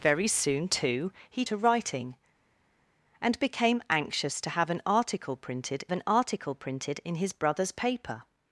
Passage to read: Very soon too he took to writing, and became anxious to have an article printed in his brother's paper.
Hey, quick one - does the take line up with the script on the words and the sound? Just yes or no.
no